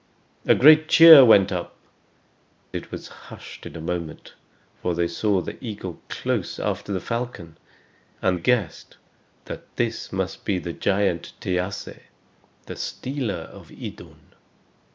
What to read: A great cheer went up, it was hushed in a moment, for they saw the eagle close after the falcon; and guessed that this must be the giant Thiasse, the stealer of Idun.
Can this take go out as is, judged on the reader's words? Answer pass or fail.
pass